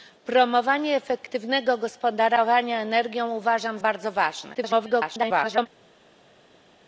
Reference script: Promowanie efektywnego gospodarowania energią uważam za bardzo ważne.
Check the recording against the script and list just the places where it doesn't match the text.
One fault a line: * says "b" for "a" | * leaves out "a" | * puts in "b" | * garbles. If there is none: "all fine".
* leaves out "za"
* garbles